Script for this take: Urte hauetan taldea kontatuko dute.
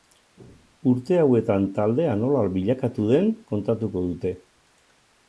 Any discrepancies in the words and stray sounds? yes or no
yes